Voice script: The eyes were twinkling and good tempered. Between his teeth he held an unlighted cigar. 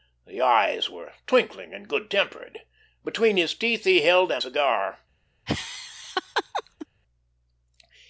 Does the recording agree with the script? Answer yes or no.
no